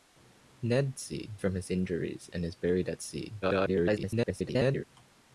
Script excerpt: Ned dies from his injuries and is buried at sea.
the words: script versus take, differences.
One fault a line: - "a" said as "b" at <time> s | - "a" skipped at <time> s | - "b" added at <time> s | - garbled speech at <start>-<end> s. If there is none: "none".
- "dies" said as "sea" at 1.0 s
- garbled speech at 3.4-4.8 s